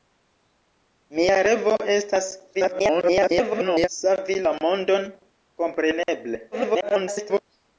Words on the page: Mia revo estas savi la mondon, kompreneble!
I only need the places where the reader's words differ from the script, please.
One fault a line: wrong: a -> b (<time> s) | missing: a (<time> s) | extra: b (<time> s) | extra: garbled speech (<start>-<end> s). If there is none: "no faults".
extra: garbled speech (2.5-3.9 s)
extra: garbled speech (6.5-7.4 s)